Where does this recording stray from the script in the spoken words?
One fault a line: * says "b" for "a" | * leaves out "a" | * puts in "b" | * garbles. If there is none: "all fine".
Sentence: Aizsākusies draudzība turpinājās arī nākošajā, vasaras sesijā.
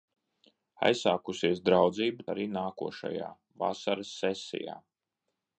* leaves out "turpinājās"